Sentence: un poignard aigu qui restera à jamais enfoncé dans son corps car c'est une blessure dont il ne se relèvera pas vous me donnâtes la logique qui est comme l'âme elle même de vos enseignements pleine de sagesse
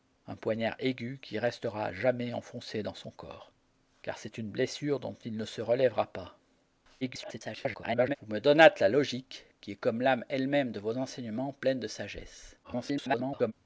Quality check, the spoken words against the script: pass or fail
fail